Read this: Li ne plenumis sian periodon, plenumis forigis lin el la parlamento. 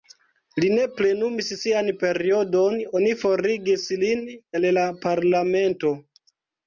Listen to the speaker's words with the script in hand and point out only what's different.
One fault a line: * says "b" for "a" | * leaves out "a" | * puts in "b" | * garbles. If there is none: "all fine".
* says "oni" for "plenumis"